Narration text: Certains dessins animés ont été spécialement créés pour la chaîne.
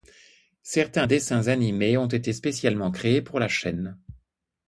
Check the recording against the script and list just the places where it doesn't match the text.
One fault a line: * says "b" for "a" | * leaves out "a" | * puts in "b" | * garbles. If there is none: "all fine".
all fine